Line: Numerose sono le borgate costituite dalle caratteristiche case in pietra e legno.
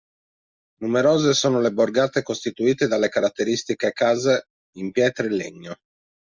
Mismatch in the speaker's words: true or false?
false